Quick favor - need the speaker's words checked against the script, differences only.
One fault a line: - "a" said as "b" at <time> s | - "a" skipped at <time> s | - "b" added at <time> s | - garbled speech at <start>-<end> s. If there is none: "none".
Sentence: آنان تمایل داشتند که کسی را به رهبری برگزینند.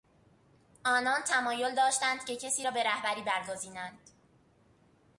none